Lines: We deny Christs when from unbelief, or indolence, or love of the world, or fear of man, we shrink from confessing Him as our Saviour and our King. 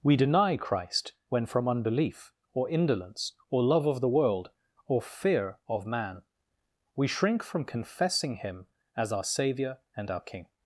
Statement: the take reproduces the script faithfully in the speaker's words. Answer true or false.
false